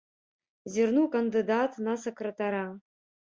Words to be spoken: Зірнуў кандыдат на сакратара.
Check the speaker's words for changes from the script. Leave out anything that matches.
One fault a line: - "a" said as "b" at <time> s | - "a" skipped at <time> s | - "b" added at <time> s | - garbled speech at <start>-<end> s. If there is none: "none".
none